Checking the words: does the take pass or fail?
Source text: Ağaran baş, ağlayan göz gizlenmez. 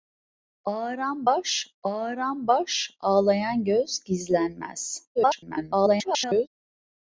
fail